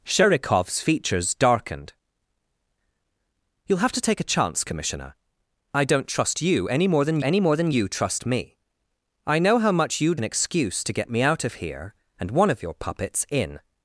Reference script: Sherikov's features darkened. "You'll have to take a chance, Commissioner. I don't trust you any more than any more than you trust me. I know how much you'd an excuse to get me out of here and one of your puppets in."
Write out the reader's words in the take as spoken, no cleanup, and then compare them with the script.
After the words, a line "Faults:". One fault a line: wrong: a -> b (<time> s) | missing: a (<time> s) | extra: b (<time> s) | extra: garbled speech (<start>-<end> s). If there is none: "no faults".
Sherikov's features darkened. "You'll have to take a chance, Commissioner. I don't trust you any more than any more than you trust me. I know how much you'd an excuse to get me out of here and one of your puppets in."
Faults:
no faults